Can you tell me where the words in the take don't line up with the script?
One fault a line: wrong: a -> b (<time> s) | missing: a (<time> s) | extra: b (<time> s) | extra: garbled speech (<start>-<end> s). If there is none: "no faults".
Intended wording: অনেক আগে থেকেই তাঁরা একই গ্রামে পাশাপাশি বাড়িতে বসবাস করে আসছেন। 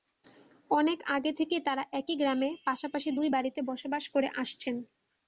extra: দুই (3.2 s)